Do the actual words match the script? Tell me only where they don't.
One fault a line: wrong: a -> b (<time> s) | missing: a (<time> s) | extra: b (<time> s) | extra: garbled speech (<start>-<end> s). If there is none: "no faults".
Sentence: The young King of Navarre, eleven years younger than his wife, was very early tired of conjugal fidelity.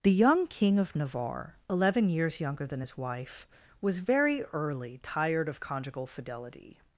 no faults